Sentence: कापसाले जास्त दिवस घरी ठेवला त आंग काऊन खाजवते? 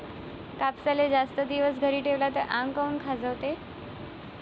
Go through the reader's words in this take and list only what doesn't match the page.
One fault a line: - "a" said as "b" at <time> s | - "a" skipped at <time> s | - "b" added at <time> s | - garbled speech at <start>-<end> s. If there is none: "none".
none